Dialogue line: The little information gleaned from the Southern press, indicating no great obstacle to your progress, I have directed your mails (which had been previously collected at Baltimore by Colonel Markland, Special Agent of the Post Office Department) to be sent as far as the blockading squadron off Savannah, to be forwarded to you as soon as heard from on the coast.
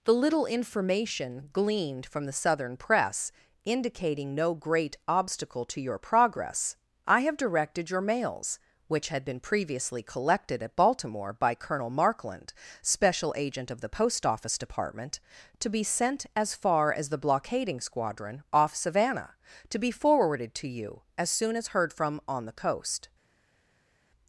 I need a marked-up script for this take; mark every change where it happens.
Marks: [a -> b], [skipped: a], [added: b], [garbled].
The little information gleaned from the Southern press, indicating no great obstacle to your progress, I have directed your mails (which had been previously collected at Baltimore by Colonel Markland, Special Agent of the Post Office Department) to be sent as far as the blockading squadron off Savannah, to be forwarded to you as soon as heard from on the coast.